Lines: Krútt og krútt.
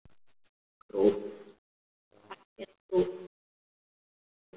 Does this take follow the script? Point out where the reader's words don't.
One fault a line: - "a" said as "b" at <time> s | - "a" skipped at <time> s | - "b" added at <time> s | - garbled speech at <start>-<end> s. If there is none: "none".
- "ekki" added at 2.6 s